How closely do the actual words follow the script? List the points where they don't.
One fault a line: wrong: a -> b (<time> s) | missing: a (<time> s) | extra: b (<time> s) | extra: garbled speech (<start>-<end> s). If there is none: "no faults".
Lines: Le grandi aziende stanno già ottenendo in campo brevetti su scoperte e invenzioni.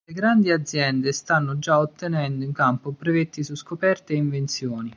no faults